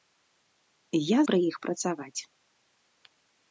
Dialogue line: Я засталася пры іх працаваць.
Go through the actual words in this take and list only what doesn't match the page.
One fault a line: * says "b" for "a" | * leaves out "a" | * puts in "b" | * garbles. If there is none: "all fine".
* leaves out "засталася"